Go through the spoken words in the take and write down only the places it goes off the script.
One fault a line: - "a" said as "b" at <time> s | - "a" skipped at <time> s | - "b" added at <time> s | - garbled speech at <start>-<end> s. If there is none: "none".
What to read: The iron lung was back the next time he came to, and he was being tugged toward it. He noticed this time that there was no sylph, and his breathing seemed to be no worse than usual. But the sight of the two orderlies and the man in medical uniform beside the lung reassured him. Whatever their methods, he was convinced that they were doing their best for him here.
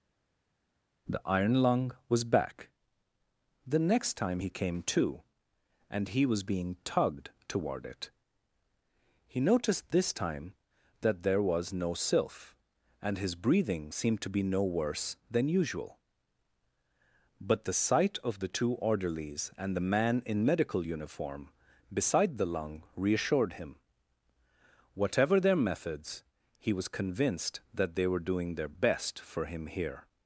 none